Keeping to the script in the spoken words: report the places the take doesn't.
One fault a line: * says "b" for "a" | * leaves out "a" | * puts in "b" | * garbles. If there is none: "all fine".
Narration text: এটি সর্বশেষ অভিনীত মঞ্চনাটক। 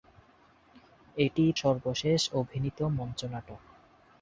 all fine